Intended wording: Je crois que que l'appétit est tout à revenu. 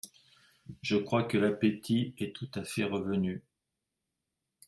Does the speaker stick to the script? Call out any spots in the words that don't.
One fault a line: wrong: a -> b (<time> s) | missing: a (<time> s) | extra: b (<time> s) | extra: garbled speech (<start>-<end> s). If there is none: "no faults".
missing: que (1.4 s)
extra: fait (2.6 s)